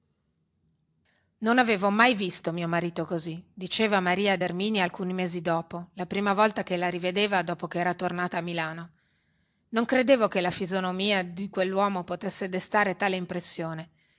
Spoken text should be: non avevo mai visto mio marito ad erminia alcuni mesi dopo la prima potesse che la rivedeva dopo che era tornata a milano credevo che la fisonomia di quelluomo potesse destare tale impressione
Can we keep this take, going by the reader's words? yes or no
no